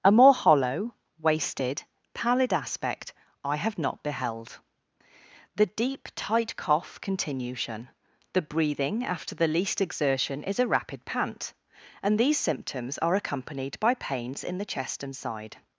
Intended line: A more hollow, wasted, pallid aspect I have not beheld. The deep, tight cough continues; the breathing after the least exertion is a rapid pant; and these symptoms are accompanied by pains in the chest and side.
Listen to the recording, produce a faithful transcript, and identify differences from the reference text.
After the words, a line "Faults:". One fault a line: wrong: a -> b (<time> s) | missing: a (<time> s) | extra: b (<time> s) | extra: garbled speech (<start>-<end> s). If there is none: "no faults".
A more hollow, wasted, pallid aspect I have not beheld. The deep, tight cough continuation; the breathing after the least exertion is a rapid pant; and these symptoms are accompanied by pains in the chest and side.
Faults:
wrong: continues -> continuation (7.0 s)